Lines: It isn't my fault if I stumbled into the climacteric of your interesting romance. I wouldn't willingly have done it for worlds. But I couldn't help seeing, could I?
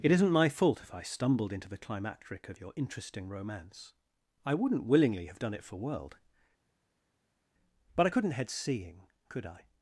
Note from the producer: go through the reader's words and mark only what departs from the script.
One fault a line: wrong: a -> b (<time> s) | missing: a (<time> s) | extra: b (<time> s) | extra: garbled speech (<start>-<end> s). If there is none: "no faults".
wrong: worlds -> world (5.8 s)
wrong: help -> head (8.3 s)